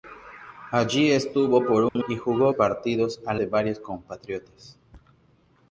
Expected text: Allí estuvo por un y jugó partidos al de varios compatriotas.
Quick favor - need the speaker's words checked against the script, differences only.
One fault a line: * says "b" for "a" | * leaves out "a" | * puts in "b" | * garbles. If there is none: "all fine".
all fine